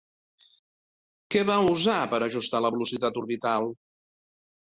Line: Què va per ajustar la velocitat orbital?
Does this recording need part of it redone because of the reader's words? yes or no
yes